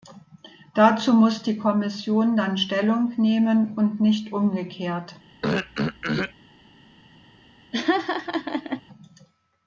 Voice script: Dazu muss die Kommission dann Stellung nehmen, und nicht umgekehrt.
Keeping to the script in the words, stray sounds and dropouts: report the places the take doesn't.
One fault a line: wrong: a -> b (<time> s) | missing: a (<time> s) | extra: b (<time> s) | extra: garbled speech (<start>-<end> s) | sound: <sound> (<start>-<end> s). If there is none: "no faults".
sound: throat clearing (5.4-6.3 s)
sound: laugh (7.7-8.8 s)